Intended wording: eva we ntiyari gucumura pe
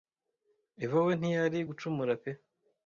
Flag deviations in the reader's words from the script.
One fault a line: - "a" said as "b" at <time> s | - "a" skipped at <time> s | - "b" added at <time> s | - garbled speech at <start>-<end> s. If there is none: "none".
none